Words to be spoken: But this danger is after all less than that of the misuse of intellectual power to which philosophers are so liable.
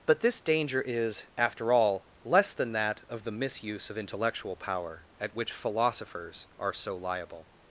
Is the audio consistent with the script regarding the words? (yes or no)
no